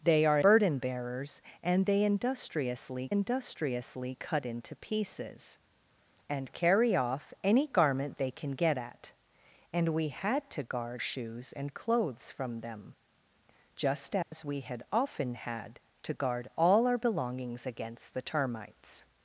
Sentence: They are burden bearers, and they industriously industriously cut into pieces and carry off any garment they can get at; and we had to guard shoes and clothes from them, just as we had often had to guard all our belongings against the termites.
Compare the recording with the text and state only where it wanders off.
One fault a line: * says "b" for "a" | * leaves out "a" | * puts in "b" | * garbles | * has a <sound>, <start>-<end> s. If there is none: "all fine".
* has a dropout, 14.2-14.3 s